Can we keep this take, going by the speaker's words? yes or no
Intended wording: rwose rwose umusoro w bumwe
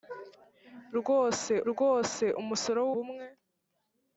yes